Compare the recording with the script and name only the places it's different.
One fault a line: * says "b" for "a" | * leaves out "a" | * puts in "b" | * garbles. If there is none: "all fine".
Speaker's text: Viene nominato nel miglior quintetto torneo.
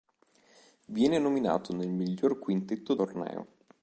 all fine